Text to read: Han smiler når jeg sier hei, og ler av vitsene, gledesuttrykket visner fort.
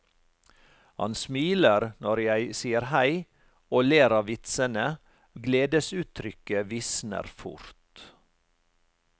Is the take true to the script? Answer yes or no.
yes